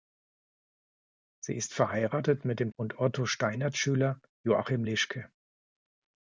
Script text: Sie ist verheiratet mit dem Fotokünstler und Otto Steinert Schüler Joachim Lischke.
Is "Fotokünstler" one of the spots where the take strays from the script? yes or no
yes